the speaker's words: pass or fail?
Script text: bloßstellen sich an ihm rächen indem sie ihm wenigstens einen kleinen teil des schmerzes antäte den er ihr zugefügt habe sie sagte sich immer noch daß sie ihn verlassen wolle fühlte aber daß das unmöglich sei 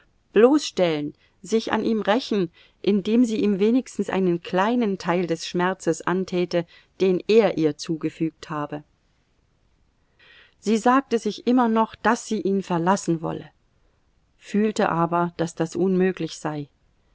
pass